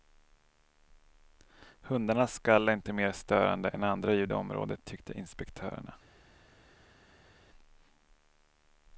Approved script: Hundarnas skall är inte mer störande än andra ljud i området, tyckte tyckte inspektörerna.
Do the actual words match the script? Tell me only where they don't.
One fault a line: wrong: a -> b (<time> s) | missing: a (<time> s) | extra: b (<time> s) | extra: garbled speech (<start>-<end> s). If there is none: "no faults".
missing: tyckte (5.2 s)